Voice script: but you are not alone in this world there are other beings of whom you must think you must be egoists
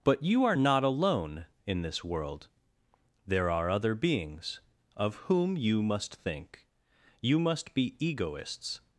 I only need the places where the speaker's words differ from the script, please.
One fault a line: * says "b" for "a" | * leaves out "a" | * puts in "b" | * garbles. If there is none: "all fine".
all fine